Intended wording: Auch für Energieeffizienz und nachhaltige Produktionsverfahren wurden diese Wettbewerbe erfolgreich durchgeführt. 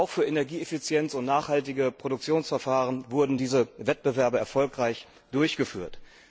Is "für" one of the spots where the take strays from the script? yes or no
no